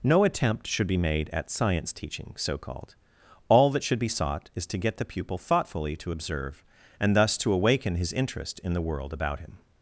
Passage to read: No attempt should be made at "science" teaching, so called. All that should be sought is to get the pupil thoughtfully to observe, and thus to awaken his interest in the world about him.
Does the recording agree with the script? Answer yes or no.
yes